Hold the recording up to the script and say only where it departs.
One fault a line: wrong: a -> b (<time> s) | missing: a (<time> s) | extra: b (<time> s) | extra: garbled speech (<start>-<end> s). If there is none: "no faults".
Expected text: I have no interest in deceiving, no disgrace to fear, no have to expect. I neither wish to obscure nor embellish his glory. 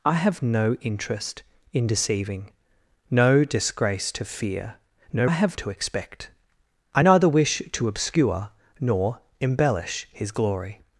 no faults